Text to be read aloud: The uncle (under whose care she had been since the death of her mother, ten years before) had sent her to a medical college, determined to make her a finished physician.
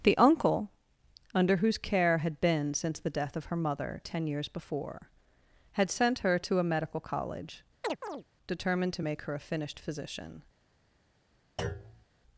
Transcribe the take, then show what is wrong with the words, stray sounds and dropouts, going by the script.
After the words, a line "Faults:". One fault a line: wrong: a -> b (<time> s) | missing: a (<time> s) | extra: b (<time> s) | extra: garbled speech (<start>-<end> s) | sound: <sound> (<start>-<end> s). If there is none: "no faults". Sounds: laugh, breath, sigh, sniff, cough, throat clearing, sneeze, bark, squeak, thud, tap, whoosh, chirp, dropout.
The uncle (under whose care had been since the death of her mother, ten years before) had sent her to a medical college, determined to make her a finished physician.
Faults:
missing: she (2.2 s)
sound: chirp (7.8-8.2 s)
sound: thud (11.6-12.1 s)